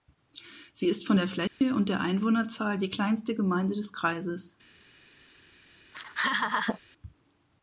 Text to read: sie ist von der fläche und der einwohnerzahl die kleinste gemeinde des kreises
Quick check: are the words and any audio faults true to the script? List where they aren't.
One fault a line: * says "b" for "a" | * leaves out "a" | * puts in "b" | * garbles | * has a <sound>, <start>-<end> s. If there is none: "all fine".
* has a dropout, 1.5-1.6 s
* has a laugh, 5.9-6.8 s